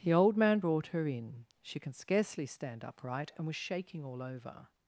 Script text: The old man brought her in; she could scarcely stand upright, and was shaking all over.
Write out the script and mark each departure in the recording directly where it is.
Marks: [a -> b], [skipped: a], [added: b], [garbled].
The old man brought her in; she [could -> can] scarcely stand upright, and was shaking all over.